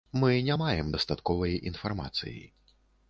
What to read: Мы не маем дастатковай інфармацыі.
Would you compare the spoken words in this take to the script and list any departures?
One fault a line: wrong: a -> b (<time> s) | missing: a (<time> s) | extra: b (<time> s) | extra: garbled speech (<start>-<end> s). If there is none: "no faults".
no faults